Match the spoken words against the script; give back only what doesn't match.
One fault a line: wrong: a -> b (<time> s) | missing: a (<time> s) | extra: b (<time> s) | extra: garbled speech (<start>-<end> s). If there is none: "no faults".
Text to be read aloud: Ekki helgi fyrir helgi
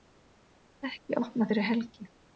wrong: helgi -> opnað (1.2 s)